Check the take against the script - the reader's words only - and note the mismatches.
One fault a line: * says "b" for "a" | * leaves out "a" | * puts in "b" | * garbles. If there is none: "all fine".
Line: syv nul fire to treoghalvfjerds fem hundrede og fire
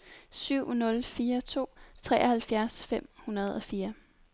all fine